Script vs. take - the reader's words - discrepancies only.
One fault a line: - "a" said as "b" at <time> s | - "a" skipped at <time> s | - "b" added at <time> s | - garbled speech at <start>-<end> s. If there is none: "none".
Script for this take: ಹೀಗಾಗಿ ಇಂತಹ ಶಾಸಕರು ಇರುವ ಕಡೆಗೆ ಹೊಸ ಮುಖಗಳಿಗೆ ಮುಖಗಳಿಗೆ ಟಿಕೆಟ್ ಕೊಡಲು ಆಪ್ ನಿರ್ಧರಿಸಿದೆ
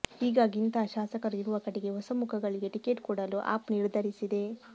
- "ಮುಖಗಳಿಗೆ" skipped at 2.7 s